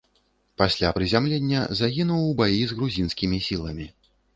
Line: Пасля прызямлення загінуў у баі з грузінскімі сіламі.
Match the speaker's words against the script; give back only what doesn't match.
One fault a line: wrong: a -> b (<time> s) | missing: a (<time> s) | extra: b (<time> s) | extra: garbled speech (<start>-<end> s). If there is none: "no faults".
no faults